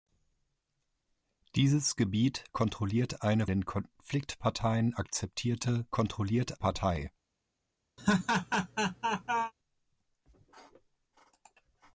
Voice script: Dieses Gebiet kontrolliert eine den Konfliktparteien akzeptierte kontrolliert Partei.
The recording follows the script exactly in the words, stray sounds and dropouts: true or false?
false